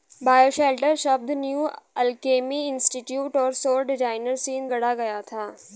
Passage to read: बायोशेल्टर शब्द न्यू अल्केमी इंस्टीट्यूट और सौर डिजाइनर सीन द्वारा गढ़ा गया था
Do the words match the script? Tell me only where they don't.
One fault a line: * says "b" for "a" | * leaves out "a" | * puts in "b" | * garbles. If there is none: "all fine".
* leaves out "द्वारा"